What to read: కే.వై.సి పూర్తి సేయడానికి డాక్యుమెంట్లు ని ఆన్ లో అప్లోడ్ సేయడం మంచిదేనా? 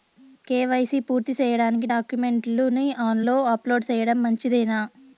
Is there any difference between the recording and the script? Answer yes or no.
no